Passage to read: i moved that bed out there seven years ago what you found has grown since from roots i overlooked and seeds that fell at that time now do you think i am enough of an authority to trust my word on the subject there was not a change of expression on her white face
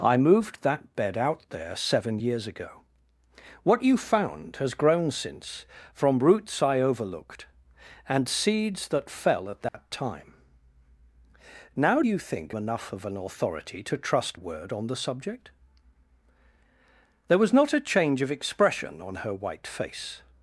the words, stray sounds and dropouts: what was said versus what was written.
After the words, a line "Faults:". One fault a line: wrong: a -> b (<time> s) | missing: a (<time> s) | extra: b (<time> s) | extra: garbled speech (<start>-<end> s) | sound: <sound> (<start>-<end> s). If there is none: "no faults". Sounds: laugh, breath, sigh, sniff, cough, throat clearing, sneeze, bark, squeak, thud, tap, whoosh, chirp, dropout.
i moved that bed out there seven years ago what you found has grown since from roots i overlooked and seeds that fell at that time now you think enough of an authority to trust word on the subject there was not a change of expression on her white face
Faults:
sound: dropout (9.7-9.7 s)
missing: do (12.0 s)
missing: i am (12.6 s)
missing: my (14.4 s)